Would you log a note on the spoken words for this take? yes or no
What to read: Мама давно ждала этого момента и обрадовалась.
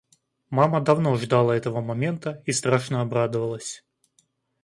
yes